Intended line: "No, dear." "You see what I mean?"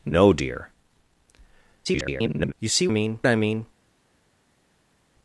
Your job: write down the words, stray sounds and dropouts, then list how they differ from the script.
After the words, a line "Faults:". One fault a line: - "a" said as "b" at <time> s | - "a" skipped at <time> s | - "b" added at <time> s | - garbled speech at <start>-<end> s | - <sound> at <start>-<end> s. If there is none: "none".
"No, dear." [garbled] "You see mean I mean?"
Faults:
- garbled speech at 1.8-2.5 s
- "what" said as "mean" at 2.9 s